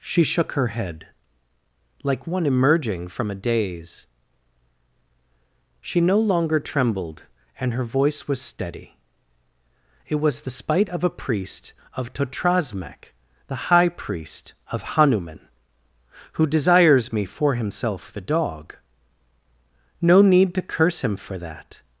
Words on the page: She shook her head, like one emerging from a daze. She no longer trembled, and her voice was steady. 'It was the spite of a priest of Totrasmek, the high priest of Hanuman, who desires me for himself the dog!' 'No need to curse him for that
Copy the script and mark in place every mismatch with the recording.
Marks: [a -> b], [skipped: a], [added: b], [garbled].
She shook her head, like one emerging from a daze. She no longer trembled, and her voice was steady. 'It was the spite of a priest of Totrasmek, the high priest of Hanuman, who desires me for himself the dog!' 'No need to curse him for that